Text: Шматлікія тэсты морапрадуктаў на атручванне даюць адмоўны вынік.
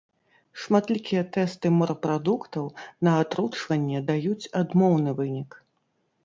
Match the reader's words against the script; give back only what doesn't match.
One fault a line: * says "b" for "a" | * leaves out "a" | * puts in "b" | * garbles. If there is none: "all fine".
all fine